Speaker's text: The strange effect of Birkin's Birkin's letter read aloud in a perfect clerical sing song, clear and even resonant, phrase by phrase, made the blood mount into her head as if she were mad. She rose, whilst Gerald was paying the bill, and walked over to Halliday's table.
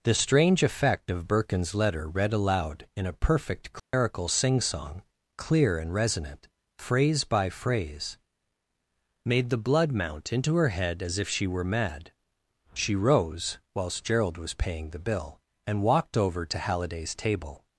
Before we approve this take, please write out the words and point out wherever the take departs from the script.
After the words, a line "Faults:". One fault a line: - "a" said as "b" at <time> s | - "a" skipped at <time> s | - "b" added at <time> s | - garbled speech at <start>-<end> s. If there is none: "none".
The strange effect of Birkin's letter read aloud in a perfect clerical sing song, clear and resonant, phrase by phrase, made the blood mount into her head as if she were mad. She rose, whilst Gerald was paying the bill, and walked over to Halliday's table.
Faults:
- "Birkin's" skipped at 1.8 s
- "even" skipped at 5.9 s